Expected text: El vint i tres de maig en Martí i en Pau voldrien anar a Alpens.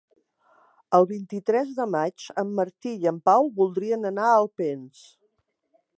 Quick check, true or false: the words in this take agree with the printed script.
true